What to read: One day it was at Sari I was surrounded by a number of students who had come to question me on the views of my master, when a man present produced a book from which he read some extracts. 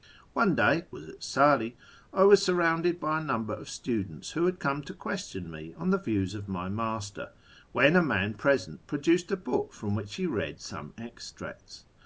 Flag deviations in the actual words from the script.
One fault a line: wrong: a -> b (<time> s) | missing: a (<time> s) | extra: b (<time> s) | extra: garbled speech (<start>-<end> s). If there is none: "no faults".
missing: it (0.9 s)